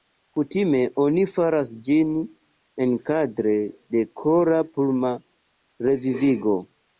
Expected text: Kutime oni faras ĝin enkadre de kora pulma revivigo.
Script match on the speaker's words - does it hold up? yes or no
yes